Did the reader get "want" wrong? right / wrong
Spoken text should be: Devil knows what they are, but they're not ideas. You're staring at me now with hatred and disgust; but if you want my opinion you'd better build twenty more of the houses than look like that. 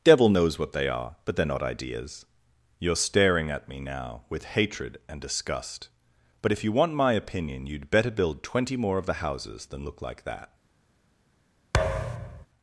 right